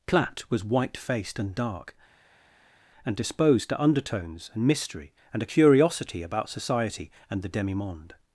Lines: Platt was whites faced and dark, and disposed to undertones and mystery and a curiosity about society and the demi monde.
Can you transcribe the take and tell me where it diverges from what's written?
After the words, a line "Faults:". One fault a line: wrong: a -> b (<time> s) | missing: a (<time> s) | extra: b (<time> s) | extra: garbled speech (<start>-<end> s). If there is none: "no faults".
Platt was white faced and dark, and disposed to undertones and mystery and a curiosity about society and the demi monde.
Faults:
wrong: whites -> white (0.6 s)